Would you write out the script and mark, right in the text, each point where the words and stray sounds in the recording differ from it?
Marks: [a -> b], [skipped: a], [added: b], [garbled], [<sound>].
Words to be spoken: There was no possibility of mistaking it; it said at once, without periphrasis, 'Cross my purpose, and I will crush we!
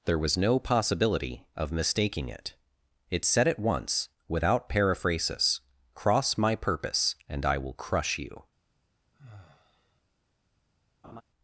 There was no possibility of mistaking it; it said at once, without periphrasis, 'Cross my purpose, and I will crush [we! -> you] [sigh] [laugh]